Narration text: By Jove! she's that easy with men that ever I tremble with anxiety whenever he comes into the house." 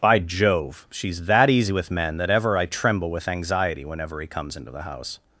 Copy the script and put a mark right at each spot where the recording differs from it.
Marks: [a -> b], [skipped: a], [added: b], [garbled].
By Jove! she's that easy with men that ever I tremble with anxiety whenever he comes into the house."